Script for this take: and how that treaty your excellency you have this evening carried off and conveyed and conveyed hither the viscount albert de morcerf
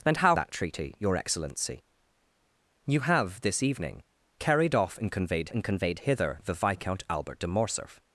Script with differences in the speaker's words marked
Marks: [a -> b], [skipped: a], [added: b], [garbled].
and how that treaty your excellency you have this evening carried off and conveyed and conveyed hither the viscount albert de morcerf